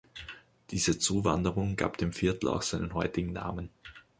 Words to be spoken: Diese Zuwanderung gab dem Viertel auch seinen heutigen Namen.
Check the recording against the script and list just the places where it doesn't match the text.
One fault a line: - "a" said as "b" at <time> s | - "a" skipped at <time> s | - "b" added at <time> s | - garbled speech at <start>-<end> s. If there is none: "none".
none